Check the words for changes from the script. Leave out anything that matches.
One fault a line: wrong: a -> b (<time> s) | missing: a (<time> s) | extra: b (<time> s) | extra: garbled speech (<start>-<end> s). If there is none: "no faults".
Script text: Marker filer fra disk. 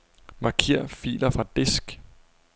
no faults